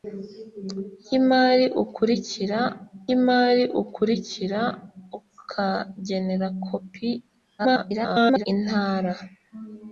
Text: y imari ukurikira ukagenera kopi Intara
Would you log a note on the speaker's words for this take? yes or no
yes